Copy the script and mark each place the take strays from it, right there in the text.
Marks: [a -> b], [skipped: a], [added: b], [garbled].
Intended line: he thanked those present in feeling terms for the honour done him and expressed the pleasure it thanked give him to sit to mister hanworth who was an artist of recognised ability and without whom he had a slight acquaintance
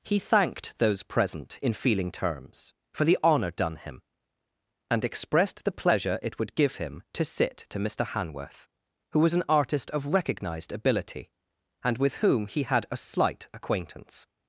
he thanked those present in feeling terms for the honour done him and expressed the pleasure it [thanked -> would] give him to sit to mister hanworth who was an artist of recognised ability and [without -> with] whom he had a slight acquaintance